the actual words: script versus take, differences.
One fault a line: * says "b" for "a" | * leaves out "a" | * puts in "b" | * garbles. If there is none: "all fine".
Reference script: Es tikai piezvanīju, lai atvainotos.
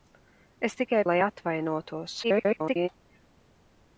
* leaves out "piezvanīju"
* garbles